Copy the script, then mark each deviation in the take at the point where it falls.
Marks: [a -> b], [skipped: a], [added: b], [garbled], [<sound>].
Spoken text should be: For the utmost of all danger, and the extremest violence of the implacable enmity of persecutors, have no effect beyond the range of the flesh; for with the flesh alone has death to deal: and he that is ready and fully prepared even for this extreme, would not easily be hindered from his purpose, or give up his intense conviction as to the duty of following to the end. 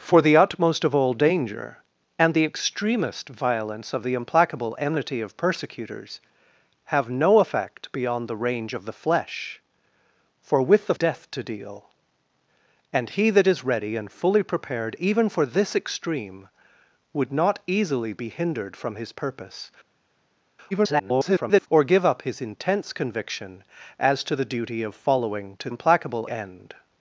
For the utmost of all danger, and the extremest violence of the implacable enmity of persecutors, have no effect beyond the range of the flesh; for with the [skipped: flesh alone has] death to deal: and he that is ready and fully prepared even for this extreme, would not easily be hindered from his purpose, [garbled] or give up his intense conviction as to the duty of following to [the -> implacable] end.